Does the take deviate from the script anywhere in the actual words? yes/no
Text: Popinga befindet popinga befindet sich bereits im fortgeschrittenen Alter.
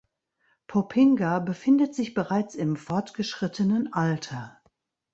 yes